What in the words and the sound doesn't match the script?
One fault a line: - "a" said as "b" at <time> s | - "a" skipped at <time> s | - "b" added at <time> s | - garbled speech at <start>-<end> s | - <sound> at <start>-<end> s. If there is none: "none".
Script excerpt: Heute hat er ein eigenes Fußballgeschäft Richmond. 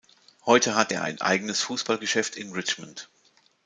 - "in" added at 2.4 s